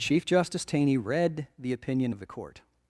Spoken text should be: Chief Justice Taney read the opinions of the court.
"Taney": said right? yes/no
yes